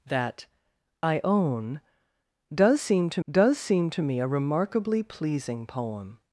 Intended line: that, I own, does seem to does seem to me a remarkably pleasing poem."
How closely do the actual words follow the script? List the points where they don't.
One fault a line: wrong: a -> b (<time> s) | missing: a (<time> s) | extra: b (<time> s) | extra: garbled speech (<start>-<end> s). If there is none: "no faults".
no faults